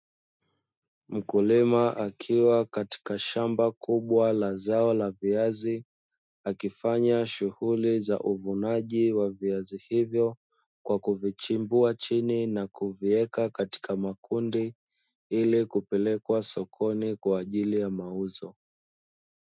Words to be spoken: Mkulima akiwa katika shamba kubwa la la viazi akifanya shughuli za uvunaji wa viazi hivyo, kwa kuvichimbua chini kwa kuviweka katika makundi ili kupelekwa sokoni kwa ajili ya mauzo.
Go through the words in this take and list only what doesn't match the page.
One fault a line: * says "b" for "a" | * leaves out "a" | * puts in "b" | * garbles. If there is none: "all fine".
* puts in "zao"
* says "na" for "kwa"